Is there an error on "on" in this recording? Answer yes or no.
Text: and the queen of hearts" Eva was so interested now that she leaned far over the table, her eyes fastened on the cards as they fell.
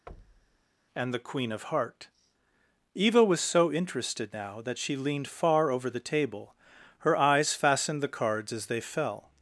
yes